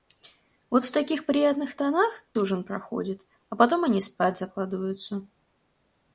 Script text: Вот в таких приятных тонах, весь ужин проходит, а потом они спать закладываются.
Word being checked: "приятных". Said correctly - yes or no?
yes